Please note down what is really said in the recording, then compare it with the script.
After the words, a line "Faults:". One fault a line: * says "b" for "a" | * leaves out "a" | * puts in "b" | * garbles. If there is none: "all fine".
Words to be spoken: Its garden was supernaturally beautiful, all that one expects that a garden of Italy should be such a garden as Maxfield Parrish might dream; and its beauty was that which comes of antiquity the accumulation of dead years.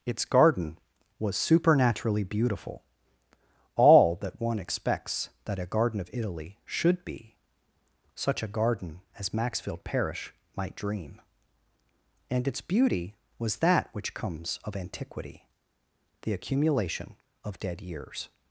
Its garden was supernaturally beautiful, all that one expects that a garden of Italy should be such a garden as Maxfield Parrish might dream; and its beauty was that which comes of antiquity the accumulation of dead years.
Faults:
all fine